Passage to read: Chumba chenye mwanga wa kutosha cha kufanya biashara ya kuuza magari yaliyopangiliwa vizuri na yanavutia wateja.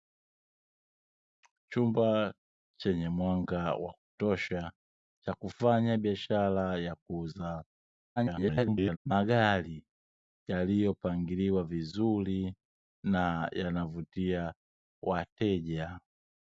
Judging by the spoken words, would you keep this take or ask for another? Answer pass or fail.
fail